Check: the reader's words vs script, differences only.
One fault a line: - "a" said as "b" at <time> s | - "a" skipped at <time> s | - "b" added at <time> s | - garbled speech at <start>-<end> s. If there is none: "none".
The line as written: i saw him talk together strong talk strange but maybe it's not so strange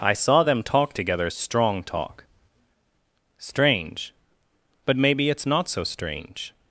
- "him" said as "them" at 0.4 s